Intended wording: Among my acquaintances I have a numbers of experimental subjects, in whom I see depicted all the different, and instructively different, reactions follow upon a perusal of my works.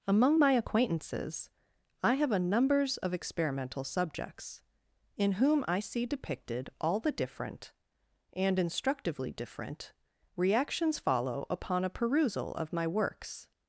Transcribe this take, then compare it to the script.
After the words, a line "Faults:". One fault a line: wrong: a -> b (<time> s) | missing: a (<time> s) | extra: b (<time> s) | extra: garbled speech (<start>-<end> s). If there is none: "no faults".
Among my acquaintances I have a numbers of experimental subjects, in whom I see depicted all the different, and instructively different, reactions follow upon a perusal of my works.
Faults:
no faults